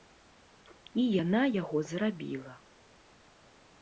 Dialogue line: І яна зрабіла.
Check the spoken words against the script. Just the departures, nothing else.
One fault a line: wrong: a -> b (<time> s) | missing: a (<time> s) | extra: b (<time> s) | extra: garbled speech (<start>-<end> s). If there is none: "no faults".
extra: яго (1.6 s)